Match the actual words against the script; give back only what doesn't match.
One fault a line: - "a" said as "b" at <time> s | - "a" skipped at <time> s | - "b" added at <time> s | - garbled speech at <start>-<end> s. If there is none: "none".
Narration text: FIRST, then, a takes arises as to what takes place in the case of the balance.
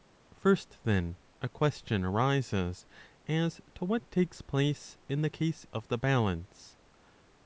- "takes" said as "question" at 1.5 s